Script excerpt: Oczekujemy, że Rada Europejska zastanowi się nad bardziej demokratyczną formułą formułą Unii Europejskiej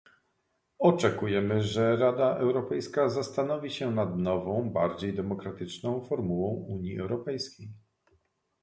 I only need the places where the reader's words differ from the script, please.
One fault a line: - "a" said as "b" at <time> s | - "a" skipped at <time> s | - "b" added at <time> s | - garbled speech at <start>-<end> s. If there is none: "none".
- "nową" added at 4.2 s
- "formułą" skipped at 6.5 s